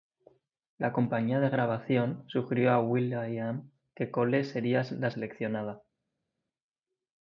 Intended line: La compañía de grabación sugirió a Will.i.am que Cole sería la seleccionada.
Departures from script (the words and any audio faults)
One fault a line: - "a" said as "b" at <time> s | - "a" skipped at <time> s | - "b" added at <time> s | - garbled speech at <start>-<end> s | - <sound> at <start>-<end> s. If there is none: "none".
none